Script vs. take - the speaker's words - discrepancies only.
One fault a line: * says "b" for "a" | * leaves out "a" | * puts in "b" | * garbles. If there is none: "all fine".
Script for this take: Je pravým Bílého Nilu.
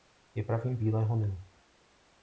all fine